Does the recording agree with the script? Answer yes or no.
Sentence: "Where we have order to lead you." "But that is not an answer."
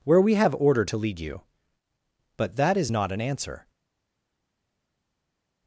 yes